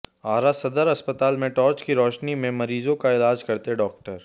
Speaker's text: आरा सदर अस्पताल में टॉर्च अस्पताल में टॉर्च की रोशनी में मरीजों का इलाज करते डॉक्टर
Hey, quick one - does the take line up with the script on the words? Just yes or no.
no